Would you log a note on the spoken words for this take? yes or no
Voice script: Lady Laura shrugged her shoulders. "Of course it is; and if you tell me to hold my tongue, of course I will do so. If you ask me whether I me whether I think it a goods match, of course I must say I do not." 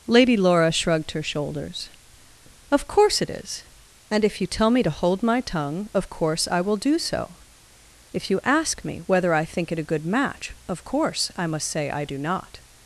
yes